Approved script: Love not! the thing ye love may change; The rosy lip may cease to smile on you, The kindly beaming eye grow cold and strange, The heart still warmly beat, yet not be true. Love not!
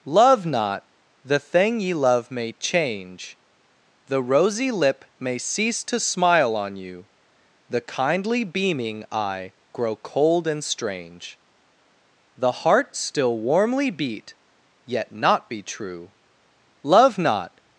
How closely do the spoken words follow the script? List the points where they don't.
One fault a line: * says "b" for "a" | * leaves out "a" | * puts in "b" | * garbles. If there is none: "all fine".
all fine